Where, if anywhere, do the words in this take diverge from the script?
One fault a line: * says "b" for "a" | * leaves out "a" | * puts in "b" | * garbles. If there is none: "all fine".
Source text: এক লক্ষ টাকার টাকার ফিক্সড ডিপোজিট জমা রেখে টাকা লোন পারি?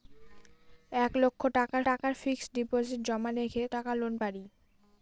all fine